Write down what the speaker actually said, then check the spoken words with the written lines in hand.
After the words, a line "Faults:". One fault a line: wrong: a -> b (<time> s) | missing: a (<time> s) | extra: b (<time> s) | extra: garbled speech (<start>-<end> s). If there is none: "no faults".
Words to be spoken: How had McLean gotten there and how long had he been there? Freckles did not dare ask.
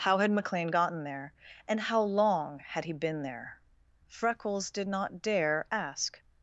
How had McLean gotten there and how long had he been there? Freckles did not dare ask.
Faults:
no faults